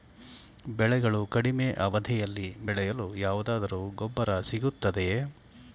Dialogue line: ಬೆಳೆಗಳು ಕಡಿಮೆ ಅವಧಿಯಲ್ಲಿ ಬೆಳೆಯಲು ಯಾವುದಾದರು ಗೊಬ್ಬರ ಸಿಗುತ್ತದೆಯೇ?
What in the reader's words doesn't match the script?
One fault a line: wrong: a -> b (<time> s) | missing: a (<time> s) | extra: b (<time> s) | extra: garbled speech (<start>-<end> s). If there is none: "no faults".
no faults